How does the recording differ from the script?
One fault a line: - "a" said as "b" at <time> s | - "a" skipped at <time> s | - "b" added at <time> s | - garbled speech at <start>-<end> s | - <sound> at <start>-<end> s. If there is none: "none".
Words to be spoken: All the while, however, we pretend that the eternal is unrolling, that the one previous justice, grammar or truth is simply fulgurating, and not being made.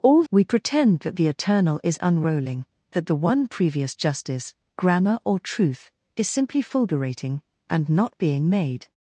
- "the while however" skipped at 0.2 s